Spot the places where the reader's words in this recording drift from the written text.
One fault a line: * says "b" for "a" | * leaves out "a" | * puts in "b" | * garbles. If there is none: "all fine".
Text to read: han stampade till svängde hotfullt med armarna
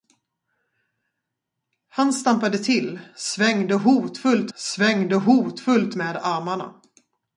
* puts in "svängde hotfullt"